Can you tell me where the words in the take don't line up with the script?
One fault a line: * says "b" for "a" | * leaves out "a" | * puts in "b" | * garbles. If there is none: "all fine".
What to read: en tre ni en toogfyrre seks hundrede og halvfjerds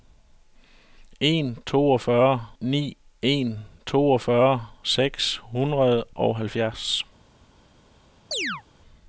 * says "toogfyrre" for "tre"